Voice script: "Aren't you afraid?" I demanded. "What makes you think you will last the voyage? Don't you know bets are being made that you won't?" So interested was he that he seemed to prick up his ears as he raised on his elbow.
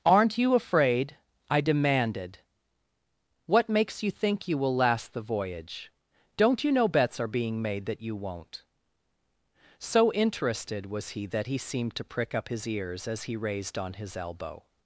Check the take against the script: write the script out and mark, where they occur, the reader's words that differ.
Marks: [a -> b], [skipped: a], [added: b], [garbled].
"Aren't you afraid?" I demanded. "What makes you think you will last the voyage? Don't you know bets are being made that you won't?" So interested was he that he seemed to prick up his ears as he raised on his elbow.